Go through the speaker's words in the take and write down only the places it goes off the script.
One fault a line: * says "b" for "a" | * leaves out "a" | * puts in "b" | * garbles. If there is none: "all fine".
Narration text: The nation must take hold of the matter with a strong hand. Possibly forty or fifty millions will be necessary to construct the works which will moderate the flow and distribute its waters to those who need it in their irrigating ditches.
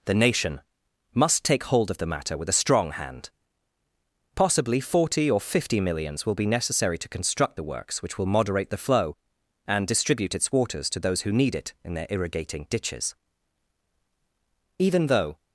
* puts in "Even though"